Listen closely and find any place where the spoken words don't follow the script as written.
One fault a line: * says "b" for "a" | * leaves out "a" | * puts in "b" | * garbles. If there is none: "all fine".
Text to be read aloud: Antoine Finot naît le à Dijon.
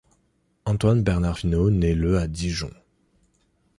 * puts in "Bernard"